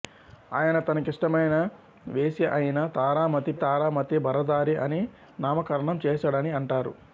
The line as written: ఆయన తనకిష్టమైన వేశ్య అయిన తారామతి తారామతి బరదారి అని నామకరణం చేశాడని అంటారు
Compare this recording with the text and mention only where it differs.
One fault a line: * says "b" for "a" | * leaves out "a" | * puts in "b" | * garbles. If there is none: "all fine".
all fine